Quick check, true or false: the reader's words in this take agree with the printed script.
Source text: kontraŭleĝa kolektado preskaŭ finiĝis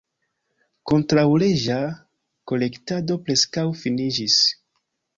true